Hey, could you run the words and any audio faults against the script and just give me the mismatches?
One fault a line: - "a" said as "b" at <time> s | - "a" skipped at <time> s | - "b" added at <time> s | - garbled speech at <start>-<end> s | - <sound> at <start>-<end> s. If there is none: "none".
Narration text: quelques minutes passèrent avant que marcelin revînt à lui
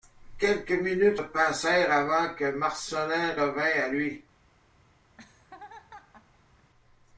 - laugh at 5.1-6.7 s